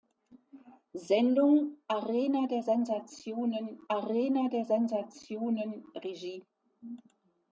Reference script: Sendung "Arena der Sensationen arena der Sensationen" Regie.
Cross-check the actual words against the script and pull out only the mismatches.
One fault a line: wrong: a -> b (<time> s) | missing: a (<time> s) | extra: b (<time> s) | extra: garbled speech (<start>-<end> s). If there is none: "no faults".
no faults